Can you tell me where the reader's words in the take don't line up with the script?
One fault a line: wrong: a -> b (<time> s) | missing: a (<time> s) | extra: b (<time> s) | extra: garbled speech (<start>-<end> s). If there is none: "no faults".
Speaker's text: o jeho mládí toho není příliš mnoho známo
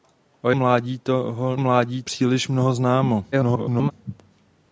missing: jeho (0.5 s)
wrong: není -> mládí (1.6 s)
extra: garbled speech (3.3-3.9 s)